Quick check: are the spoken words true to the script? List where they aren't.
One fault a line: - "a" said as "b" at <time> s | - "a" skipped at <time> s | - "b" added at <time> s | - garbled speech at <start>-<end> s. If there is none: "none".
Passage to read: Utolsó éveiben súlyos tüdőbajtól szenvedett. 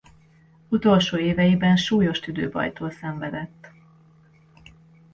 none